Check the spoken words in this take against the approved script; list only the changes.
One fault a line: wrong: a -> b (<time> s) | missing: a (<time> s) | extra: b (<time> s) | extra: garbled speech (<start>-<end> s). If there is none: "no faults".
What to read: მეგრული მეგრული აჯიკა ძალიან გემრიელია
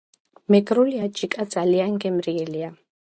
missing: მეგრული (1.0 s)